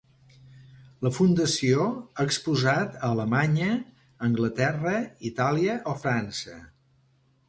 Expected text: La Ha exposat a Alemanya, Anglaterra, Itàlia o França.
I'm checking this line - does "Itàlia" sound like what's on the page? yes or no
yes